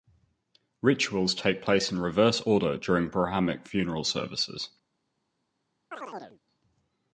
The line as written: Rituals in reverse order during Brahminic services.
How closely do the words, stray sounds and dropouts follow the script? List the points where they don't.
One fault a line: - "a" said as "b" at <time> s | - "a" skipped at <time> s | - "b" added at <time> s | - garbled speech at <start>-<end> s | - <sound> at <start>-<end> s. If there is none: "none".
- "take place" added at 1.4 s
- "funeral" added at 3.7 s
- chirp at 5.9-6.4 s